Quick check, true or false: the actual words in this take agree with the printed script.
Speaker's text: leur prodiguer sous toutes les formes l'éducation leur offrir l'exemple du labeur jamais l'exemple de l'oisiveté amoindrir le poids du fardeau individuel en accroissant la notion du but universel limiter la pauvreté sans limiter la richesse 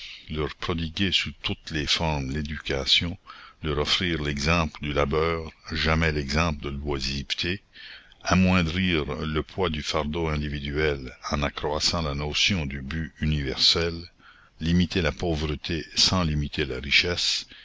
true